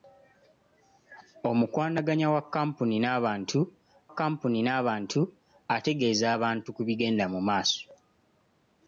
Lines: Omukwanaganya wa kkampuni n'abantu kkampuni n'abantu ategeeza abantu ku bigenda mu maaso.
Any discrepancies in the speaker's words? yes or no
no